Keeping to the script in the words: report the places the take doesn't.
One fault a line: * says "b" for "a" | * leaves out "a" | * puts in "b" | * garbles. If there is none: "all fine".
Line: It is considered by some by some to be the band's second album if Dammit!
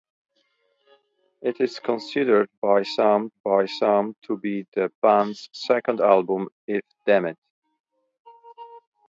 all fine